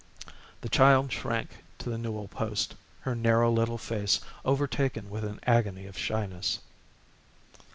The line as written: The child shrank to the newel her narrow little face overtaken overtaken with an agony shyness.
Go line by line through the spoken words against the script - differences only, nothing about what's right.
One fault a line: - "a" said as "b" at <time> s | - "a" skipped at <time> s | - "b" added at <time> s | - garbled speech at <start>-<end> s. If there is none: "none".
- "post" added at 2.3 s
- "overtaken" skipped at 5.1 s
- "of" added at 5.8 s